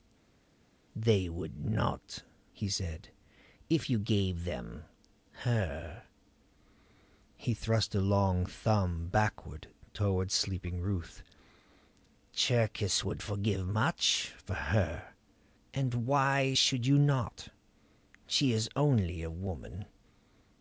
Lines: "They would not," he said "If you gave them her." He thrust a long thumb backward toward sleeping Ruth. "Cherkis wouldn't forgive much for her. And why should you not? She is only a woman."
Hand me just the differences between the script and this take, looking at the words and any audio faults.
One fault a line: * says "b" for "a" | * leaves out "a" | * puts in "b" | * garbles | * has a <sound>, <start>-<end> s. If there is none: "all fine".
* says "would" for "wouldn't"